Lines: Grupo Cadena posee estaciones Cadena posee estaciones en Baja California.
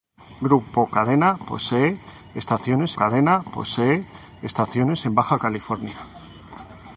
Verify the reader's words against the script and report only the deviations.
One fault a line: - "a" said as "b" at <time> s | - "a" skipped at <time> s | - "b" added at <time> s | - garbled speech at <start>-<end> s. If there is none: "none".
none